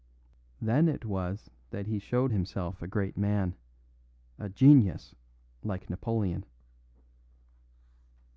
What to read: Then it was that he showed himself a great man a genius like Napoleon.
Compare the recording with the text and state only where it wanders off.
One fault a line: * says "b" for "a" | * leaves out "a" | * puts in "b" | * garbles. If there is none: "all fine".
all fine